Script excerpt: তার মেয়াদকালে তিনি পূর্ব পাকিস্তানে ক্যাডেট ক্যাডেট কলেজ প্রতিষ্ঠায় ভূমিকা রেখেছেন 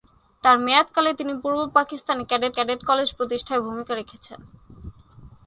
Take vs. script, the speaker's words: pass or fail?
pass